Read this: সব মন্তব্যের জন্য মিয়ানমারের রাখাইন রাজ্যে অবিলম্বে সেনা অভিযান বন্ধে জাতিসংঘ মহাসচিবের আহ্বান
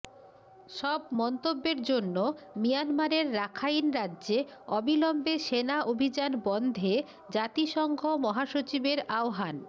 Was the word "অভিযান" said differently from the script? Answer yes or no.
no